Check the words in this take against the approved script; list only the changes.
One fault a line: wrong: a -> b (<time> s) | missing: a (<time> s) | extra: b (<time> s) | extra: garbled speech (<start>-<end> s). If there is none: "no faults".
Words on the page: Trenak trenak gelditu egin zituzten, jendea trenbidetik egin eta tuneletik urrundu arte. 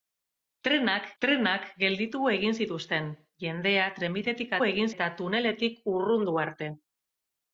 no faults